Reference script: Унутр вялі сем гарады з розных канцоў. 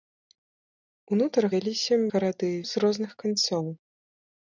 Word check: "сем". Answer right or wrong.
right